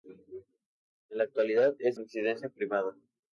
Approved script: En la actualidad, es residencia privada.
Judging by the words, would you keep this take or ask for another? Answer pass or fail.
pass